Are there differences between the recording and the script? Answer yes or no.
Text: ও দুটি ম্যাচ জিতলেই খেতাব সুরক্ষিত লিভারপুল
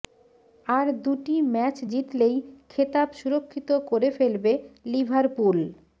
yes